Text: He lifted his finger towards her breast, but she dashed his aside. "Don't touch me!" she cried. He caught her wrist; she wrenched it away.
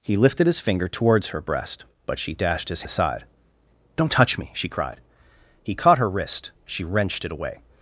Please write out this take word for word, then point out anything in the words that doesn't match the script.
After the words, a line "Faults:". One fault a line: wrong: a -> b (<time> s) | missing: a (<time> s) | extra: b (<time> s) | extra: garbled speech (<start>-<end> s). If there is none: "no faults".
He lifted his finger towards her breast, but she dashed his aside. "Don't touch me!" she cried. He caught her wrist; she wrenched it away.
Faults:
no faults